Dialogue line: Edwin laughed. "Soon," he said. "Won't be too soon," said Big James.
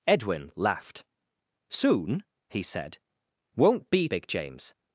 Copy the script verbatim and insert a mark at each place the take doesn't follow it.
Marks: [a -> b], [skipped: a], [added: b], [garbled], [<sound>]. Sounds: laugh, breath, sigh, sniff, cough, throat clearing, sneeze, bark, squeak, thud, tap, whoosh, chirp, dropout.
Edwin laughed. "Soon," he said. "Won't be [skipped: too soon," said] Big James.